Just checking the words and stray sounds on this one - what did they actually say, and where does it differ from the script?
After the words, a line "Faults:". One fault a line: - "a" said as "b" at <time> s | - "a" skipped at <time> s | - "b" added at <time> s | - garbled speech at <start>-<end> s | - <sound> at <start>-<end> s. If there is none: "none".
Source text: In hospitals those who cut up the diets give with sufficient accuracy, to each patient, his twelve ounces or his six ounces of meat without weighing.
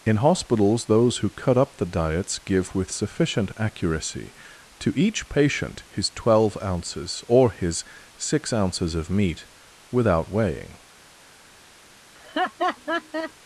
In hospitals those who cut up the diets give with sufficient accuracy, to each patient, his twelve ounces or his six ounces of meat without weighing.
Faults:
- laugh at 12.1-13.3 s